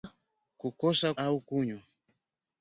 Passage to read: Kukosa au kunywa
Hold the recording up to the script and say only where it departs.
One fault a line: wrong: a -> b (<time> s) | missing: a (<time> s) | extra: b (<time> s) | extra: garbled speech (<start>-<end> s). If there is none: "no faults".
no faults